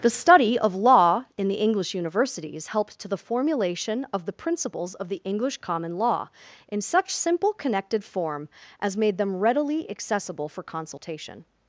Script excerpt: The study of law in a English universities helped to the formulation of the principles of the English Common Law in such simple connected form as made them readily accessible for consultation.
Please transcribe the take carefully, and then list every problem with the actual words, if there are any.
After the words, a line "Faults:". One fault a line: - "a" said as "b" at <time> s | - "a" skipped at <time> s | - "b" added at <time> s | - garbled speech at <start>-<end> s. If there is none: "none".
The study of law in the English universities helped to the formulation of the principles of the English Common Law in such simple connected form as made them readily accessible for consultation.
Faults:
- "a" said as "the" at 1.5 s